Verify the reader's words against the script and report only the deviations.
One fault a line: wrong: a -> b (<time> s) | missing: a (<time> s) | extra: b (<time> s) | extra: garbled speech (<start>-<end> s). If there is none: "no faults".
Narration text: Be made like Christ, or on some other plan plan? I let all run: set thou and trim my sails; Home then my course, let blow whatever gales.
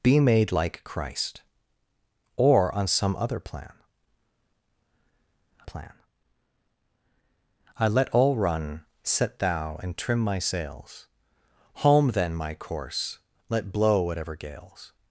no faults